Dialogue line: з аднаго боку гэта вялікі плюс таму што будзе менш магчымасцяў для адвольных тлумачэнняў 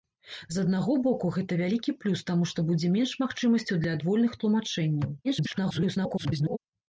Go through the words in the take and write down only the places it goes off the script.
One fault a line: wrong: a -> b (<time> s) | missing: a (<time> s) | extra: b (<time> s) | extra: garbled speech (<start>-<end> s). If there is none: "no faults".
extra: garbled speech (5.2-6.6 s)